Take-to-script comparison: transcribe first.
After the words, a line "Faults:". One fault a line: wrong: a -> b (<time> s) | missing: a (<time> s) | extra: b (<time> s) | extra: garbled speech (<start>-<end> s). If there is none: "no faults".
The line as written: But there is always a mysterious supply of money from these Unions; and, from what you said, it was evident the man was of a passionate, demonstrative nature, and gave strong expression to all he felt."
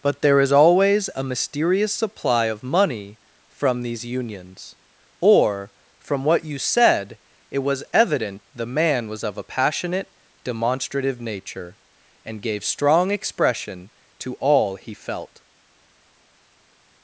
But there is always a mysterious supply of money from these Unions; or, from what you said, it was evident the man was of a passionate, demonstrative nature, and gave strong expression to all he felt."
Faults:
wrong: and -> or (5.2 s)